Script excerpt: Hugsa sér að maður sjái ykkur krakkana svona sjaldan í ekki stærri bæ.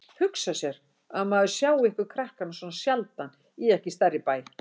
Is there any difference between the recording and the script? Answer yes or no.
no